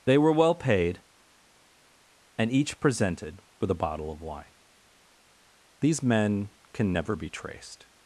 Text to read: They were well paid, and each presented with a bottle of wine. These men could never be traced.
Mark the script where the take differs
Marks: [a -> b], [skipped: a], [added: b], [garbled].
They were well paid, and each presented with a bottle of wine. These men [could -> can] never be traced.